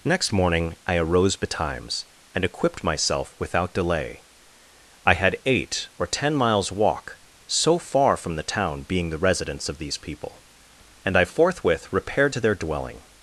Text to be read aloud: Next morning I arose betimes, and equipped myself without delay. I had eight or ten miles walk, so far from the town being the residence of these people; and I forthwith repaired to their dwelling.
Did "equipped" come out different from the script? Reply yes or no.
no